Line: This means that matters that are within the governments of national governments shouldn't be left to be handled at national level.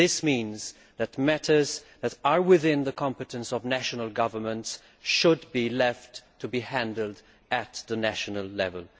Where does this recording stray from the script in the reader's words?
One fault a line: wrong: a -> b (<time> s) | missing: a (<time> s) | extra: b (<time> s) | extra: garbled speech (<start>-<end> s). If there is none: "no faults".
wrong: governments -> competence (2.9 s)
wrong: shouldn't -> should (5.0 s)